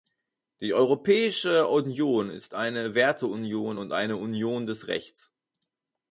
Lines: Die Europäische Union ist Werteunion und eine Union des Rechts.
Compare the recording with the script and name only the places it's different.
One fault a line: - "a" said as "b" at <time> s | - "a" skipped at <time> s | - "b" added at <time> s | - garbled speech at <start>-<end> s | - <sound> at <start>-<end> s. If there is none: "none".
- "eine" added at 2.5 s